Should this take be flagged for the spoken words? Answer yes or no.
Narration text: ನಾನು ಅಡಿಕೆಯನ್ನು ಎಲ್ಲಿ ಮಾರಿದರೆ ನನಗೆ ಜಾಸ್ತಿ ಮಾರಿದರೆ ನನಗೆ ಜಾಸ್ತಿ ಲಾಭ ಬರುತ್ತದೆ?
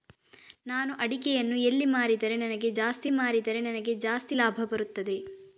no